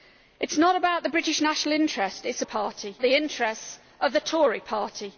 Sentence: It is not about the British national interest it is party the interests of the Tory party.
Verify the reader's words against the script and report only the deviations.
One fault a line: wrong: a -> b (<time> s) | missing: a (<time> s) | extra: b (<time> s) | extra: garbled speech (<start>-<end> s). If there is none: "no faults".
no faults